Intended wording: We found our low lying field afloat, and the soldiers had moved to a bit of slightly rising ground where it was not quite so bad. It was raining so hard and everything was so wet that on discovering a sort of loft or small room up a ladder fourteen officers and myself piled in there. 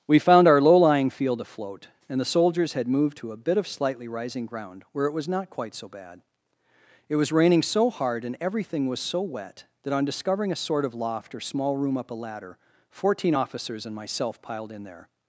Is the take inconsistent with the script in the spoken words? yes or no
no